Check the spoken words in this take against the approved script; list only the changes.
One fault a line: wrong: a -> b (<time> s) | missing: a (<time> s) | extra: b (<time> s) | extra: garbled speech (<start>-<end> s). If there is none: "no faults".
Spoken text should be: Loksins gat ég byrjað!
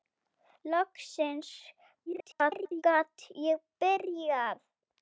extra: garbled speech (2.1-2.8 s)